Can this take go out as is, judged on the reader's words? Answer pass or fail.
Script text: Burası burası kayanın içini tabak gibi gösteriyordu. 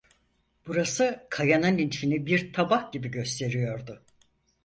fail